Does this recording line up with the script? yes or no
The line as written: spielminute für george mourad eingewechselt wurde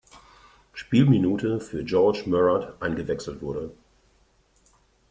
yes